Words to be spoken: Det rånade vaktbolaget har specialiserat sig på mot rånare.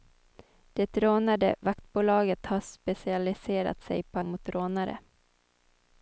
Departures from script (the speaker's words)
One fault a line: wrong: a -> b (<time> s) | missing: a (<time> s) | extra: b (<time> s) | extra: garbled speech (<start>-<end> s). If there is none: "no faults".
no faults